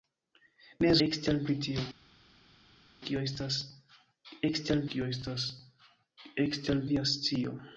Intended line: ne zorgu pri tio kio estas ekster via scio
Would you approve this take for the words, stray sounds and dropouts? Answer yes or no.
no